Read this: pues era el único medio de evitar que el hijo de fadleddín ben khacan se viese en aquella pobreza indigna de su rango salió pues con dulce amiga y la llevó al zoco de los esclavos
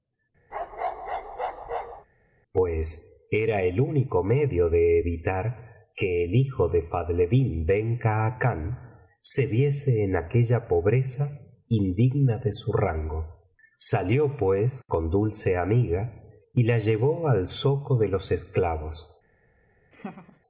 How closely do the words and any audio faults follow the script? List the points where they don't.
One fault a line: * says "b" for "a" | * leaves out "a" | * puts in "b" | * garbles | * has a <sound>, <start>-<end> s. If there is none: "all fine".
* has a bark, 0.5-2.1 s
* has a laugh, 19.9-20.4 s